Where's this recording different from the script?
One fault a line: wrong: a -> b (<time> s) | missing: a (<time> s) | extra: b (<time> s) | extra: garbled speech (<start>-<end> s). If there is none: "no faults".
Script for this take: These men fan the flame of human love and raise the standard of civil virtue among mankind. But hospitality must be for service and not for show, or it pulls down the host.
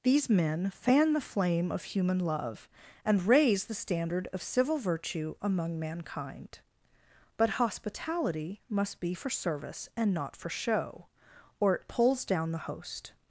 no faults